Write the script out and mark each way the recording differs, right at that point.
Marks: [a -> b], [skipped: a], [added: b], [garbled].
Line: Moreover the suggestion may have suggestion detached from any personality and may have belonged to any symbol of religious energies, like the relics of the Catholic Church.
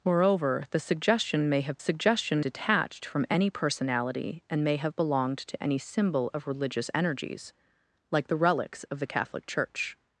Moreover the suggestion may have suggestion detached from any personality and may have belonged to any symbol of religious energies, like the relics of the Catholic Church.